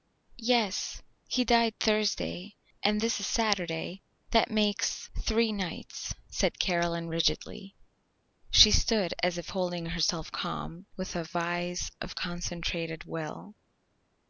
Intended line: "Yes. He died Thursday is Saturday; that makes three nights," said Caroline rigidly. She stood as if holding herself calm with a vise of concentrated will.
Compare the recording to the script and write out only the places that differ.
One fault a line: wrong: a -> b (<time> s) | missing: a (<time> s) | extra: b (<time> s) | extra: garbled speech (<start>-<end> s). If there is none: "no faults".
extra: and this (2.8 s)